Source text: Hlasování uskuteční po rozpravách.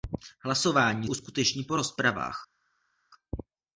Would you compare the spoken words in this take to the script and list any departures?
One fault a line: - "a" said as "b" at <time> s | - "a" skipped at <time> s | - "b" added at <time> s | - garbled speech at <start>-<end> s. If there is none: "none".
none